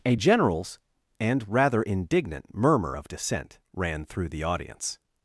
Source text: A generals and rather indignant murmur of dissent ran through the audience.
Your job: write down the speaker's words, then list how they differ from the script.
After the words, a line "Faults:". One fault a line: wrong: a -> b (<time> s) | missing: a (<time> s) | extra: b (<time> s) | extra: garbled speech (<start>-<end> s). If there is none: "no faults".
A generals and rather indignant murmur of dissent ran through the audience.
Faults:
no faults